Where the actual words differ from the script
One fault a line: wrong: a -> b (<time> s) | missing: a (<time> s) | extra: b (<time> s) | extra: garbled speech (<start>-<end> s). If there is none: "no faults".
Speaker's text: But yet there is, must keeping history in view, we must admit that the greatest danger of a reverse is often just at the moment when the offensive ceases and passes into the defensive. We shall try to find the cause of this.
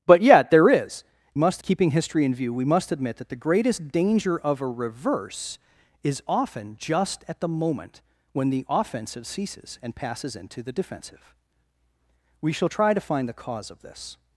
no faults